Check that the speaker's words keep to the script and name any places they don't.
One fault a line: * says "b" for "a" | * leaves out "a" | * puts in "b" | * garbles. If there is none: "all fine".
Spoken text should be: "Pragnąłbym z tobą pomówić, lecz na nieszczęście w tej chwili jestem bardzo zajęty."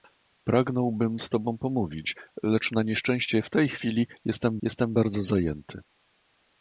* puts in "jestem"